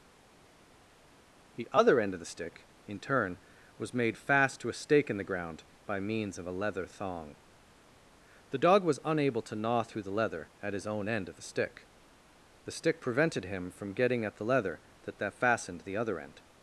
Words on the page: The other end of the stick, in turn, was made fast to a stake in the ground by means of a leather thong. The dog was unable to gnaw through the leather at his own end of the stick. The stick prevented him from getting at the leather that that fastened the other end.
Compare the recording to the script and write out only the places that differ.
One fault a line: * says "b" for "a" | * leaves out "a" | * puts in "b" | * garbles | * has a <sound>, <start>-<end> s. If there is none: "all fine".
all fine